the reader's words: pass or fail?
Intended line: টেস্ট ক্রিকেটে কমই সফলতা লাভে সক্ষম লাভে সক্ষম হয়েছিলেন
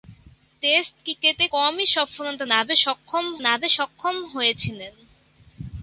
pass